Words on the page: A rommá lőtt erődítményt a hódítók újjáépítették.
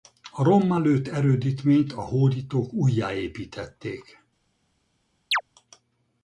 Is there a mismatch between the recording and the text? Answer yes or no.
no